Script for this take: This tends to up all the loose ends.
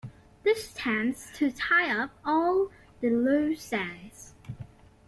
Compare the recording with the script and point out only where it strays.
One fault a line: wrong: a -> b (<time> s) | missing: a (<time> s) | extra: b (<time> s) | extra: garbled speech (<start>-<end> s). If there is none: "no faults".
extra: tie (1.5 s)